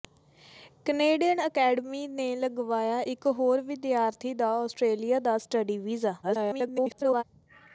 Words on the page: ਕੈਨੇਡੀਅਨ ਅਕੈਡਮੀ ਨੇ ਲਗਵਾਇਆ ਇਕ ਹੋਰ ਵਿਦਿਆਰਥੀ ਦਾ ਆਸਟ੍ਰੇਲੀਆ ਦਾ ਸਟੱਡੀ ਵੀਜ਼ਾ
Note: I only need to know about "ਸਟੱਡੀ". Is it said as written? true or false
true